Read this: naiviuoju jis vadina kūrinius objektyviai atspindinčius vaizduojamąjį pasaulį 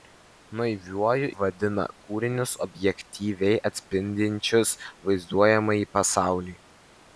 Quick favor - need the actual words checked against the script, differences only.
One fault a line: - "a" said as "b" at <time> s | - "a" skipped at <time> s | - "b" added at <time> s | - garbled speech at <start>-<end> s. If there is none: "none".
- "jis" skipped at 1.3 s